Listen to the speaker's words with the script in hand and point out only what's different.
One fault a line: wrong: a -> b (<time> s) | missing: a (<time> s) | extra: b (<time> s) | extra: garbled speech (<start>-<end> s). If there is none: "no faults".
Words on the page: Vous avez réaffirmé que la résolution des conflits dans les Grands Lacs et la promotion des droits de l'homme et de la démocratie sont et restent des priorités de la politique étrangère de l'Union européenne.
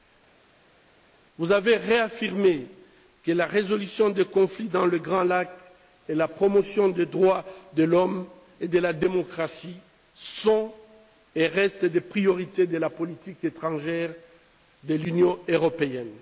no faults